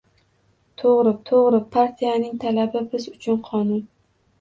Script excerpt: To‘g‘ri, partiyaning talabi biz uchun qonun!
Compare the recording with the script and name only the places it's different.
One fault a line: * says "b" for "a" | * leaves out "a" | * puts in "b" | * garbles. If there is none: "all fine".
* puts in "to‘g‘ri"